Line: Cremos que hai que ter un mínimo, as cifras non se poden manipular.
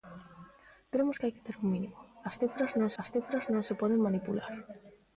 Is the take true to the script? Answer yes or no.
no